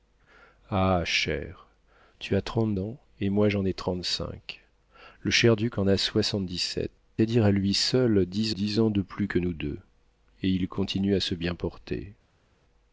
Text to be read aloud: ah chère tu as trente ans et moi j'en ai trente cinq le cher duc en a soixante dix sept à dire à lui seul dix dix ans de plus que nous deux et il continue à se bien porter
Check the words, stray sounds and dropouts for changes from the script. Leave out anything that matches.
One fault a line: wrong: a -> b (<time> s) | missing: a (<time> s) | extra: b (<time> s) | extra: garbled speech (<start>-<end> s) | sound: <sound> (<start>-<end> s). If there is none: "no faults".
no faults